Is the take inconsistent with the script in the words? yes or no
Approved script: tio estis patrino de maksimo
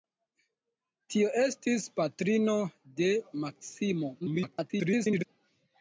yes